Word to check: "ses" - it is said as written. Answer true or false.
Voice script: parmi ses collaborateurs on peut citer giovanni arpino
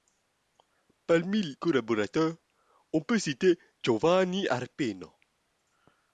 false